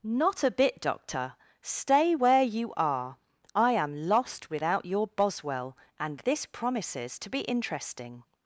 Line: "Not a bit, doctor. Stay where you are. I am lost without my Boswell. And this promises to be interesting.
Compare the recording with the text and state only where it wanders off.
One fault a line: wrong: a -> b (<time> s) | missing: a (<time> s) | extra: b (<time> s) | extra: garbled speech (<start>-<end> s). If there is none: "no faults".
wrong: my -> your (4.8 s)